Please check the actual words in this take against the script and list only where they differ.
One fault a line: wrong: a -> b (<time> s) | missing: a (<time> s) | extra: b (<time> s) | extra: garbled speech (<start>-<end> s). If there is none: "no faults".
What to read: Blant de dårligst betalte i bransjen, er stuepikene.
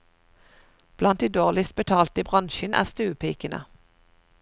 no faults